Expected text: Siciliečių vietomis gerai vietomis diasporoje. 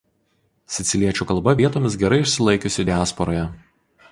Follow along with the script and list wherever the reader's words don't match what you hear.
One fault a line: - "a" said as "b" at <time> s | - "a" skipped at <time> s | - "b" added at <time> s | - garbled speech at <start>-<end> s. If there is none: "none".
- "kalba" added at 1.3 s
- "vietomis" said as "išsilaikiusi" at 2.3 s